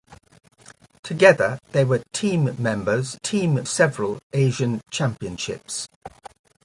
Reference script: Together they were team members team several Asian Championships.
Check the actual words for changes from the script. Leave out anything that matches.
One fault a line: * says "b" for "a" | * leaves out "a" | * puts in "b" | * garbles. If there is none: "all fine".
all fine